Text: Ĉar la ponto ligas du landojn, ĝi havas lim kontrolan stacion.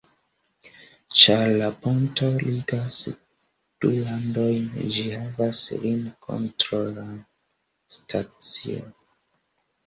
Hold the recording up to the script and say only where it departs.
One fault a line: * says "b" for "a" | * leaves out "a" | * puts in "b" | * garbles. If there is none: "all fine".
all fine